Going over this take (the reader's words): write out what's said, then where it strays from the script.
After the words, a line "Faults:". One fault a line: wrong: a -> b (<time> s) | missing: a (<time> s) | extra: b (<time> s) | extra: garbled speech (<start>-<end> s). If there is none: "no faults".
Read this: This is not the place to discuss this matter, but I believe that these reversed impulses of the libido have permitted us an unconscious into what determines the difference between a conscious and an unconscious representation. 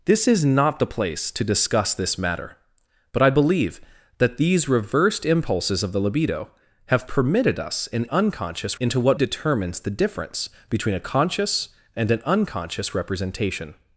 This is not the place to discuss this matter, but I believe that these reversed impulses of the libido have permitted us an unconscious into what determines the difference between a conscious and an unconscious representation.
Faults:
no faults